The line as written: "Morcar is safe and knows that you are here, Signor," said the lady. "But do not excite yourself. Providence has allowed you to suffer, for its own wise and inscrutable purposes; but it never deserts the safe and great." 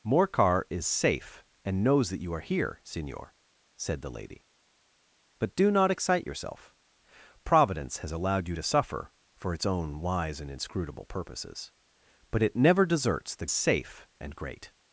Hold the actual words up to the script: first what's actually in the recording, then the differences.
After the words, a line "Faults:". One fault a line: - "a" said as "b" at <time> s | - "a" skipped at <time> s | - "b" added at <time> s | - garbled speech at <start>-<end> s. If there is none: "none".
"Morcar is safe and knows that you are here, Signor," said the lady. "But do not excite yourself. Providence has allowed you to suffer, for its own wise and inscrutable purposes; but it never deserts the safe and great."
Faults:
none